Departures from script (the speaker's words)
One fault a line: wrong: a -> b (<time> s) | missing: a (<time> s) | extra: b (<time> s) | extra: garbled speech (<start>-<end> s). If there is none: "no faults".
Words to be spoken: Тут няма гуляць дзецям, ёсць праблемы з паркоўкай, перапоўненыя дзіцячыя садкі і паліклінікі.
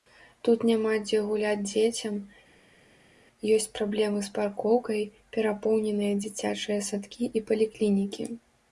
extra: дзе (1.0 s)